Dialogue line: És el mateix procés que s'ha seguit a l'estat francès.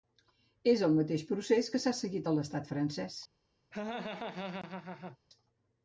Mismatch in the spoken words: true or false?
false